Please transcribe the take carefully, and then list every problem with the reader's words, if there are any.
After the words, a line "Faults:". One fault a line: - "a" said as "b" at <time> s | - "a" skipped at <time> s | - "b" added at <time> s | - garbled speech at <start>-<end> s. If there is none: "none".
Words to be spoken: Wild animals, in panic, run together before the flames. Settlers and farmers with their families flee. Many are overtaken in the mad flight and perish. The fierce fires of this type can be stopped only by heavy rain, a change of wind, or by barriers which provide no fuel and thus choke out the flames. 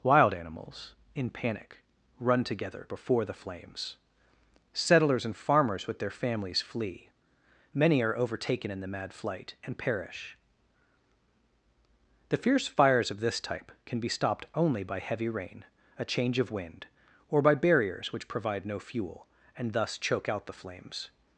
Wild animals, in panic, run together before the flames. Settlers and farmers with their families flee. Many are overtaken in the mad flight and perish. The fierce fires of this type can be stopped only by heavy rain, a change of wind, or by barriers which provide no fuel and thus choke out the flames.
Faults:
none